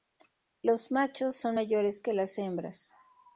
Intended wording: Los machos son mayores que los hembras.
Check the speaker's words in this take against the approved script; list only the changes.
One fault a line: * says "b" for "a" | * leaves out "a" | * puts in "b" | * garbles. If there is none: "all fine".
* says "las" for "los"